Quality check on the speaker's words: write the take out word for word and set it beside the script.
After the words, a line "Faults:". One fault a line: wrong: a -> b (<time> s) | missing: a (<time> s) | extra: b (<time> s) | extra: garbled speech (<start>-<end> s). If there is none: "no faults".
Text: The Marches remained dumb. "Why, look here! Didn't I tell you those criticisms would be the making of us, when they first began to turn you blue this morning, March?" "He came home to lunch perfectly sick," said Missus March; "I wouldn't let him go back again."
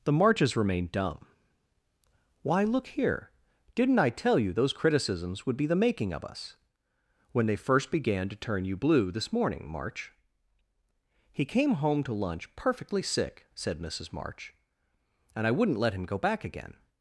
The Marches remained dumb. "Why, look here! Didn't I tell you those criticisms would be the making of us, when they first began to turn you blue this morning, March?" "He came home to lunch perfectly sick," said Missus March; "and I wouldn't let him go back again."
Faults:
extra: and (15.3 s)